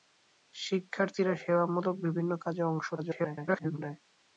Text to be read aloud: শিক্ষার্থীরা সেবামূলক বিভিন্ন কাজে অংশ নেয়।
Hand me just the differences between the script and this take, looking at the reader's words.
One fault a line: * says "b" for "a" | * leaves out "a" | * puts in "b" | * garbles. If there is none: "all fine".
* garbles